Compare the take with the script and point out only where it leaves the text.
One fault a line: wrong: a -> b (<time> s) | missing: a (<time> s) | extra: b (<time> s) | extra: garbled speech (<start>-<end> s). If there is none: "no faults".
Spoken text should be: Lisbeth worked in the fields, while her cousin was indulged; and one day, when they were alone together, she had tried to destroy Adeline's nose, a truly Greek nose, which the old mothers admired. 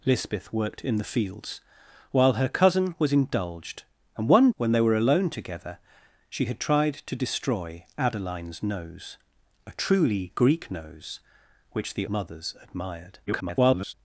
missing: day (4.5 s)
missing: old (12.1 s)
extra: garbled speech (13.3-13.9 s)